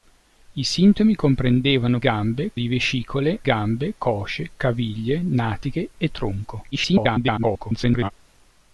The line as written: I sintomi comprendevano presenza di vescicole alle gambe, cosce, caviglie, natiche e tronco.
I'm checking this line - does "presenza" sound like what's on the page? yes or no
no